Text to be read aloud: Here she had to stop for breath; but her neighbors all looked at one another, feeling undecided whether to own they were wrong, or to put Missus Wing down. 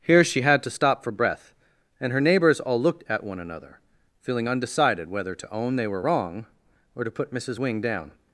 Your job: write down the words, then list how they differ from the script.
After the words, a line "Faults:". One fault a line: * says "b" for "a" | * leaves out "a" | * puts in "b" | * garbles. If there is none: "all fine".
Here she had to stop for breath; and her neighbors all looked at one another, feeling undecided whether to own they were wrong, or to put Missus Wing down.
Faults:
* says "and" for "but"